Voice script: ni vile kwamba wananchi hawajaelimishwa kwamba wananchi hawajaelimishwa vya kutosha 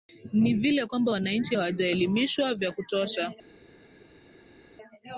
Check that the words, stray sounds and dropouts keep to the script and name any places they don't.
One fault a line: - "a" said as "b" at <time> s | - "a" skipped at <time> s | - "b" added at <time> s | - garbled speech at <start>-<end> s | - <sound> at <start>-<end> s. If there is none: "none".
- "kwamba wananchi hawajaelimishwa" skipped at 2.5 s